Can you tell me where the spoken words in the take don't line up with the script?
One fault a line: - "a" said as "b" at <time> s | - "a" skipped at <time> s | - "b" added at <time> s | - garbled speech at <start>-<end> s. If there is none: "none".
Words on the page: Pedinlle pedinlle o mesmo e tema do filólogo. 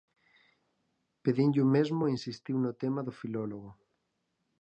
- "pedinlle" skipped at 1.6 s
- "insistiu no" added at 2.2 s